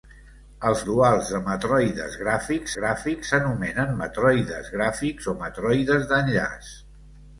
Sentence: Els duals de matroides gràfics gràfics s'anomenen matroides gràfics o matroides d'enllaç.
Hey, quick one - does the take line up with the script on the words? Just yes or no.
yes